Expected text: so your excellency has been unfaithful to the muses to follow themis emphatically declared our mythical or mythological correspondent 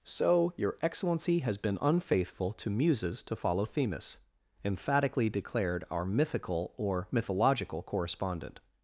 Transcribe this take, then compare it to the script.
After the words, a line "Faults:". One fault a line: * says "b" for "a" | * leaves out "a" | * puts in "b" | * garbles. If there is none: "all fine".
so your excellency has been unfaithful to muses to follow themis emphatically declared our mythical or mythological correspondent
Faults:
* leaves out "the"